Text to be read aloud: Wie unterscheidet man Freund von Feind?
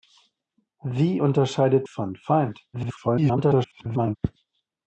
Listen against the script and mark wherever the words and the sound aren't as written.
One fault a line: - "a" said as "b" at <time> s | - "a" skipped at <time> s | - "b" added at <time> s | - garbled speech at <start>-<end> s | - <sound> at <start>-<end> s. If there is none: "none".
- "man Freund" skipped at 1.8 s
- garbled speech at 2.7-4.2 s